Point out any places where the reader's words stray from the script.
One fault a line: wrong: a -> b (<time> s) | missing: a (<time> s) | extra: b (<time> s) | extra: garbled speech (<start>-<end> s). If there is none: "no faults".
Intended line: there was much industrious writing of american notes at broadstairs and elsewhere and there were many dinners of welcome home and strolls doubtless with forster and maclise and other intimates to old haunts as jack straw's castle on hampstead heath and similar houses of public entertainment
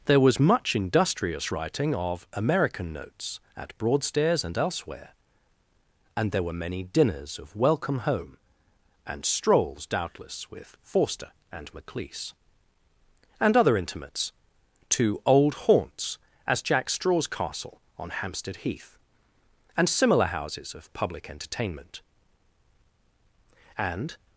extra: and (23.8 s)